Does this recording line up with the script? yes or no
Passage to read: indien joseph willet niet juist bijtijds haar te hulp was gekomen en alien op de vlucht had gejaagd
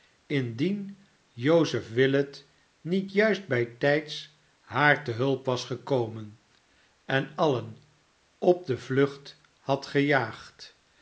yes